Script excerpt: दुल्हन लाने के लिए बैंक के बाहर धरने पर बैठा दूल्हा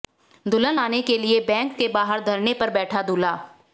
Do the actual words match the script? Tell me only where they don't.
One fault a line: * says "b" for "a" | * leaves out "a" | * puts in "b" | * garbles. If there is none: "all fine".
all fine